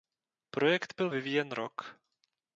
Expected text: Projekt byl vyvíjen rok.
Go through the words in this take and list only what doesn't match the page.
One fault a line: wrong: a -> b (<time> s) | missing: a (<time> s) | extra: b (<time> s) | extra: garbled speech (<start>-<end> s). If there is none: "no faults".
no faults